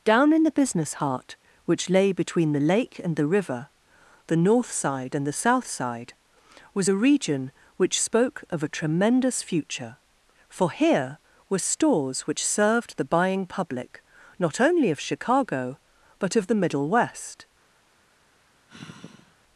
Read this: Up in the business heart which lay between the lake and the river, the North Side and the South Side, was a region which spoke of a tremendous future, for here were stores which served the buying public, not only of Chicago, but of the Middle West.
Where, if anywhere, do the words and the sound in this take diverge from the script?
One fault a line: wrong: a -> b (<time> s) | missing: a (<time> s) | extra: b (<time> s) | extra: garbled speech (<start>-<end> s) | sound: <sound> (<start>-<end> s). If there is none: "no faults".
wrong: Up -> Down (0.0 s)
sound: sigh (18.7-19.4 s)